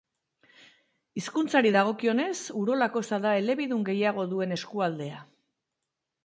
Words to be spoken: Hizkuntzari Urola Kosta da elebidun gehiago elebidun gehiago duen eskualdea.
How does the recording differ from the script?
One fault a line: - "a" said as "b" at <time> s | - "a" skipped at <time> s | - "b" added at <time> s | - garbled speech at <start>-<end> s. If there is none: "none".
- "dagokionez" added at 1.7 s
- "elebidun gehiago" skipped at 4.3 s